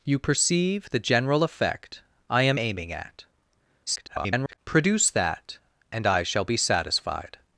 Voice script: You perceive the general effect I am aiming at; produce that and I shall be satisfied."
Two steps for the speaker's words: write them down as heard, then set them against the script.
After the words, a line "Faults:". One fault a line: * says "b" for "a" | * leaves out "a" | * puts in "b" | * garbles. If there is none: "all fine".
You perceive the general effect I am aiming at; [garbled] produce that and I shall be satisfied."
Faults:
* garbles